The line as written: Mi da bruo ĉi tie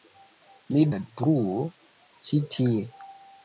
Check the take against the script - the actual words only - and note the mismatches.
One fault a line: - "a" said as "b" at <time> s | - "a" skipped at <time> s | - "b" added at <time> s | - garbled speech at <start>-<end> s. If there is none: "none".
none